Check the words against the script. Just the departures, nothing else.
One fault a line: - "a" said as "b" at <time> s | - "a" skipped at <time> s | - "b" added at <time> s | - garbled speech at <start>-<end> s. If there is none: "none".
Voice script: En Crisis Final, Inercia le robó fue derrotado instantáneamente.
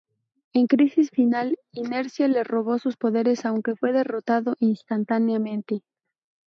- "sus poderes aunque" added at 2.8 s